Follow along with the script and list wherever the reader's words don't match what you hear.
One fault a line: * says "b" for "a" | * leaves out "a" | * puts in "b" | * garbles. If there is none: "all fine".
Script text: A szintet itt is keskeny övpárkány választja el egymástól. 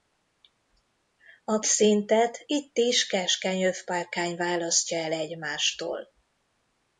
all fine